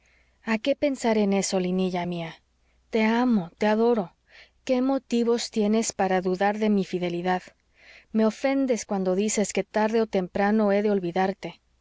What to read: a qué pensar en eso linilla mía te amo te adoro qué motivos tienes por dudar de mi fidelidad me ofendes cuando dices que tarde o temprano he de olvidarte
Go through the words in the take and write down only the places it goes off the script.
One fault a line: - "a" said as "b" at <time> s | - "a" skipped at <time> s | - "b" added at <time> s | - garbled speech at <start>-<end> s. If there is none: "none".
- "por" said as "para" at 5.9 s